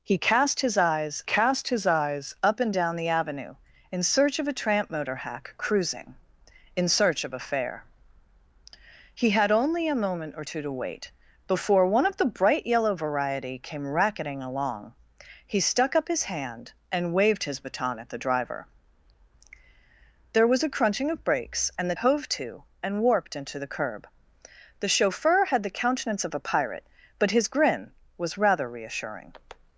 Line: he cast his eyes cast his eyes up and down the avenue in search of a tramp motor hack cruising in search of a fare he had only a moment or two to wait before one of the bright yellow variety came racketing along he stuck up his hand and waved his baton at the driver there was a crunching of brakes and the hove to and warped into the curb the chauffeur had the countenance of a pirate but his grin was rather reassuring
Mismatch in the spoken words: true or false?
false